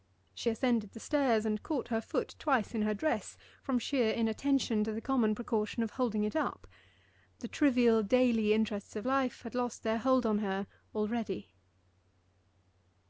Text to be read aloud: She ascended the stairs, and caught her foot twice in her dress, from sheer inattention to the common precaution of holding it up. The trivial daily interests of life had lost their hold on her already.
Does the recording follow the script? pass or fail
pass